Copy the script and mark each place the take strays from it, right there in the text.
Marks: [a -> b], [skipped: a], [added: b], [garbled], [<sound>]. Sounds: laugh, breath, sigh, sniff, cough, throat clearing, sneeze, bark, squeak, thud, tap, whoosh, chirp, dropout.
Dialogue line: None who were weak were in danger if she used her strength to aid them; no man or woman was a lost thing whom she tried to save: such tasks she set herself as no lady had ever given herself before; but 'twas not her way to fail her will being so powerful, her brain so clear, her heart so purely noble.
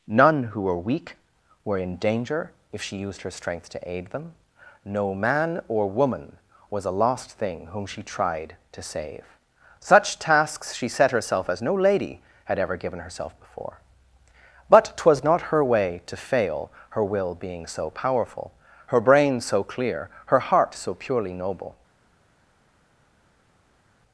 None who were weak were in danger if she used her strength to aid them; no man or woman was a lost thing whom she tried to save: such tasks she set herself as no lady had ever given herself before; but 'twas not her way to fail her will being so powerful, her brain so clear, her heart so purely noble.